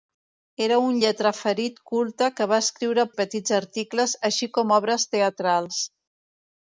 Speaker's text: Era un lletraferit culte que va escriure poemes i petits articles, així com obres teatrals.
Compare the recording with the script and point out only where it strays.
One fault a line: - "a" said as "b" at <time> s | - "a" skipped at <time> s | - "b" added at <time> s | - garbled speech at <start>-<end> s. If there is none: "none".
- "poemes" skipped at 3.1 s